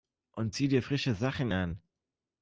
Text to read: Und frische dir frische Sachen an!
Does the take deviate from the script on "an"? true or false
false